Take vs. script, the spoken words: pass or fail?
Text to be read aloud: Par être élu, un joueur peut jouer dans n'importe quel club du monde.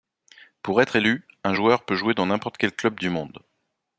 fail